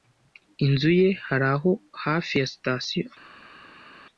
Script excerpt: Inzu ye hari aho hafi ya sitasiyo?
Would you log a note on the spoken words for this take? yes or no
no